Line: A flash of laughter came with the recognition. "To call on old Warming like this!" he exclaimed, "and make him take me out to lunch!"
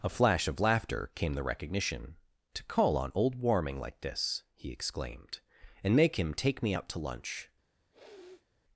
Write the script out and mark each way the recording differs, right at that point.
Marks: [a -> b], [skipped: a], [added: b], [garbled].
A flash of laughter came [skipped: with] the recognition. "To call on old Warming like this!" he exclaimed, "and make him take me out to lunch!"